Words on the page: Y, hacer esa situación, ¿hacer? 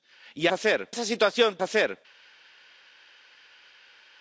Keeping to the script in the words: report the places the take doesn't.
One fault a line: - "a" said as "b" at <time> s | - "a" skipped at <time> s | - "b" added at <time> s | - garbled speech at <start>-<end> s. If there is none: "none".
none